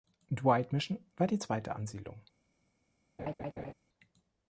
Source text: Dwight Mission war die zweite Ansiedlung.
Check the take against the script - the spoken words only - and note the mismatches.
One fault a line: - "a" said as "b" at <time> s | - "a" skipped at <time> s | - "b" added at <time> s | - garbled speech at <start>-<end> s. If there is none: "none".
none